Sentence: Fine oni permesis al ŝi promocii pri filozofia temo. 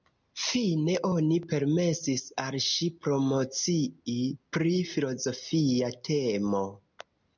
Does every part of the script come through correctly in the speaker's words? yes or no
yes